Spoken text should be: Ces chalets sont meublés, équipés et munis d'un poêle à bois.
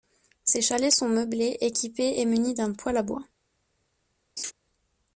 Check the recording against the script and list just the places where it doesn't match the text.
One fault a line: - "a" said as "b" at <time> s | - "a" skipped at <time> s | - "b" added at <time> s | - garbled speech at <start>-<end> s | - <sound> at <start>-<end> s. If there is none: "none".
- laugh at 4.4-4.5 s